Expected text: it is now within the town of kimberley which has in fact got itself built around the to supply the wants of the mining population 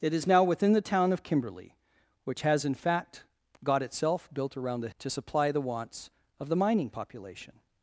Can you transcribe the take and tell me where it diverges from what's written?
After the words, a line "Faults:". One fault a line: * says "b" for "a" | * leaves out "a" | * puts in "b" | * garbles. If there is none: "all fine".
it is now within the town of kimberley which has in fact got itself built around the to supply the wants of the mining population
Faults:
all fine